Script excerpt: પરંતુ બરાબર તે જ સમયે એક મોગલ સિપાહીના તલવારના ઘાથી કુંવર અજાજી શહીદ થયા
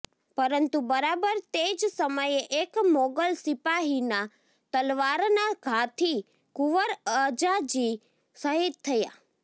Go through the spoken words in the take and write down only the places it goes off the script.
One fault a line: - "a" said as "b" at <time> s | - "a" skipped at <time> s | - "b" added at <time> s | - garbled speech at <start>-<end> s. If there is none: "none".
none